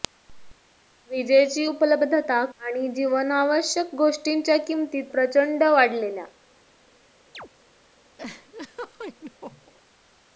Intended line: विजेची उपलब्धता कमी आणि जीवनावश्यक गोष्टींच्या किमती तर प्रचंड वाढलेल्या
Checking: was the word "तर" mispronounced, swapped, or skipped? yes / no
yes